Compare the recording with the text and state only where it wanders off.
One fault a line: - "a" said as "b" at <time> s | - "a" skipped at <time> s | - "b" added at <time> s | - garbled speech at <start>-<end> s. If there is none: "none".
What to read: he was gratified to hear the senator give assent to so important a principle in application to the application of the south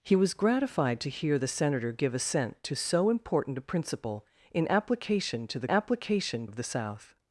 none